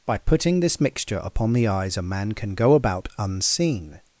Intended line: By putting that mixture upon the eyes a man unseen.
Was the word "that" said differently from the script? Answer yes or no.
yes